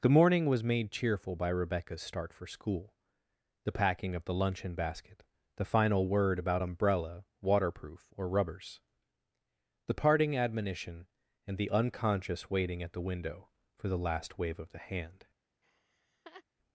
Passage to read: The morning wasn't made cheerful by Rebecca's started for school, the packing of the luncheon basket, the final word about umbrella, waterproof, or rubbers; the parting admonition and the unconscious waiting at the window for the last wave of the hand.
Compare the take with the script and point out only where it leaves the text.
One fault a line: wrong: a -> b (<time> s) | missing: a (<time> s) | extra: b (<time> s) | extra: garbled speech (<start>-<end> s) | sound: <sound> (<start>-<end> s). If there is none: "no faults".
wrong: wasn't -> was (0.5 s)
wrong: started -> start (2.0 s)
sound: laugh (15.6-16.4 s)